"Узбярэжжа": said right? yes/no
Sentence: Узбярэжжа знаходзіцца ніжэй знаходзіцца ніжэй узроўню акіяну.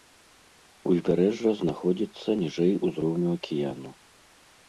yes